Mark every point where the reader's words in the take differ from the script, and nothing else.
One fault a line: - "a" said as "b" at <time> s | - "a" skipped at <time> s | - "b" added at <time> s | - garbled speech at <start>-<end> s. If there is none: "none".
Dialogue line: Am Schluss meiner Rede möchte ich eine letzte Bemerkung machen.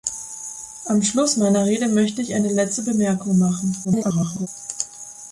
- garbled speech at 3.8-4.5 s